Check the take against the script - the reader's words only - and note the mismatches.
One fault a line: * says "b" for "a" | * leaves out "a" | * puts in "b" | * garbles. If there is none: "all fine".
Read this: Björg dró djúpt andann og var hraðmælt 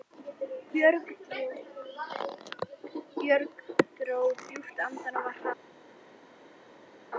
all fine